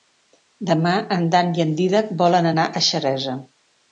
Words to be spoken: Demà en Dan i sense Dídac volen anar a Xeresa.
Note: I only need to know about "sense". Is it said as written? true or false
false